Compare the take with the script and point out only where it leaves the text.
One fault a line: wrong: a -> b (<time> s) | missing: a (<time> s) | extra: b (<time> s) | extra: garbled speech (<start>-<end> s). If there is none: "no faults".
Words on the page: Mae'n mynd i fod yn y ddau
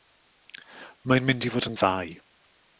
no faults